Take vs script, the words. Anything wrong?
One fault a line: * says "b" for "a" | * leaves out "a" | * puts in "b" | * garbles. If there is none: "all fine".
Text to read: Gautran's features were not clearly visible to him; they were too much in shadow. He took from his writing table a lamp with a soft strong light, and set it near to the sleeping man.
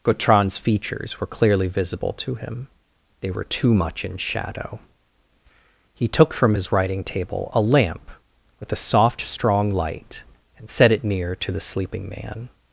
* leaves out "not"